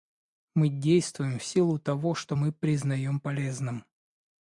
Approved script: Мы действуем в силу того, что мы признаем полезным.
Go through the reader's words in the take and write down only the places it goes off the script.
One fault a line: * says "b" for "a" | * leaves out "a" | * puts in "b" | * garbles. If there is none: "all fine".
all fine